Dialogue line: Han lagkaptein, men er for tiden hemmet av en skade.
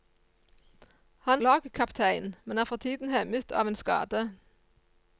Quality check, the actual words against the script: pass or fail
pass